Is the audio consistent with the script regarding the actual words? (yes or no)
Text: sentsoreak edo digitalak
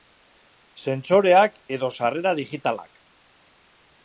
no